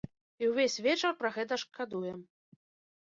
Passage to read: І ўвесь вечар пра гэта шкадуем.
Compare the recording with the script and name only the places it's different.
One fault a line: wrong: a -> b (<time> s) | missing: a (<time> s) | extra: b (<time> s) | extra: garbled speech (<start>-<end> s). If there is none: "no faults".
no faults